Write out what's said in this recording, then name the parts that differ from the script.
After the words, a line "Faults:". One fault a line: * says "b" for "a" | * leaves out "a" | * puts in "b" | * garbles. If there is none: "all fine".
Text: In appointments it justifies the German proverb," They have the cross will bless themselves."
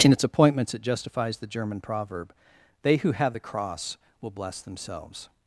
In its appointments it justifies the German proverb," They who have the cross will bless themselves."
Faults:
* puts in "its"
* puts in "who"